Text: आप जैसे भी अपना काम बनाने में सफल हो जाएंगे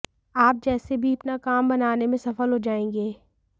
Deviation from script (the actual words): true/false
false